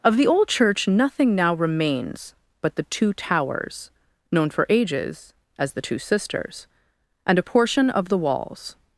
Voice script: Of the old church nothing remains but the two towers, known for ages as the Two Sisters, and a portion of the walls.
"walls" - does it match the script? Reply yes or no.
yes